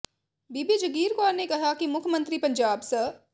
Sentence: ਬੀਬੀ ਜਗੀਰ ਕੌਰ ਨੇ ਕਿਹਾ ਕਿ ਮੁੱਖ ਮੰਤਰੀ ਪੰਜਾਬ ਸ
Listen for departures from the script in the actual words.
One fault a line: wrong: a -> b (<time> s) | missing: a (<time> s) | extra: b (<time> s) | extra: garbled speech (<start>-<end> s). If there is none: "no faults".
no faults